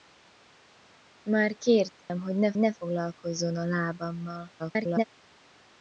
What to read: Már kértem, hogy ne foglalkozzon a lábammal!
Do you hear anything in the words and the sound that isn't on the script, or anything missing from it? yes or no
yes